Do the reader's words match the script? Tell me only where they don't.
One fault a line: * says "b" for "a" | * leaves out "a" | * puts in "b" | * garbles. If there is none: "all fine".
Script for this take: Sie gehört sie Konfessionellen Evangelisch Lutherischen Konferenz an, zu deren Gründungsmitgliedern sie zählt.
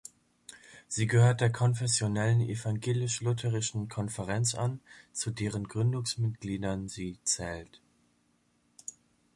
* says "der" for "sie"